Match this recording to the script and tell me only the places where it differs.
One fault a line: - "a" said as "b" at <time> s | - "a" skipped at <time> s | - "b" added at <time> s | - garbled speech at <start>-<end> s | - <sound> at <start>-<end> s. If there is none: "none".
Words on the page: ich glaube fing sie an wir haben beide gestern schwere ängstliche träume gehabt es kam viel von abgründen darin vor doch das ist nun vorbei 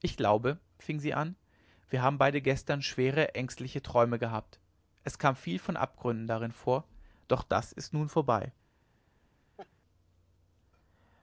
- laugh at 9.6-9.7 s